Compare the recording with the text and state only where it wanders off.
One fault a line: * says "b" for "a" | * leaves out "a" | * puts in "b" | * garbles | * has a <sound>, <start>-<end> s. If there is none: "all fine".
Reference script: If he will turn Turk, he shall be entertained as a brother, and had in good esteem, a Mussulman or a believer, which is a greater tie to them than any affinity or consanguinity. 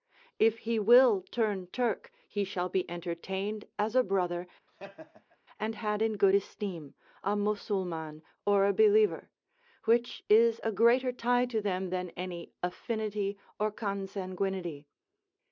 * has a laugh, 4.7-5.4 s